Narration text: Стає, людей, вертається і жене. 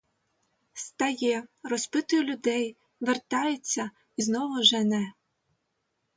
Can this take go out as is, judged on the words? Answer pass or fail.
fail